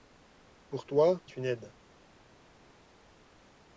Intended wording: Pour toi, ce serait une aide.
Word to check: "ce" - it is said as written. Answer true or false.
false